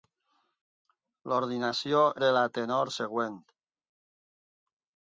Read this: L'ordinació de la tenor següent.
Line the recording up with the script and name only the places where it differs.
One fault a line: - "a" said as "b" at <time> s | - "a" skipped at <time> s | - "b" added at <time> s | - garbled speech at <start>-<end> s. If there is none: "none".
none